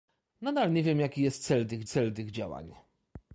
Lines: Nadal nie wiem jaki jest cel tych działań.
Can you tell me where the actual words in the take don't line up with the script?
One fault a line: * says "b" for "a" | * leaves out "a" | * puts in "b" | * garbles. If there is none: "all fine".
* puts in "cel tych"